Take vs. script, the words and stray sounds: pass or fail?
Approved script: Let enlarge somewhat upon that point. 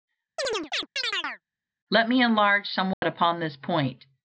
fail